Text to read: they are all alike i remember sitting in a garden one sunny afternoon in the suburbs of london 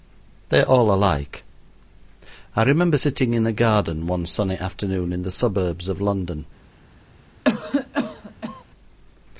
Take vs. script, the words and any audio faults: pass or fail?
fail